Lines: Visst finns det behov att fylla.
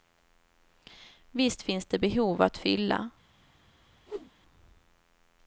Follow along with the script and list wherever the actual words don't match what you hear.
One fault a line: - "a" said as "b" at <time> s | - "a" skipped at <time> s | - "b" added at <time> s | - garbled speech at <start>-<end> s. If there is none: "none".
none